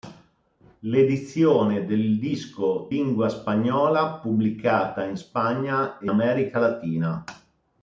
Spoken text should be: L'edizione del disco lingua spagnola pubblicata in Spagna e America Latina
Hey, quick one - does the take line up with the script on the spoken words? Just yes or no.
yes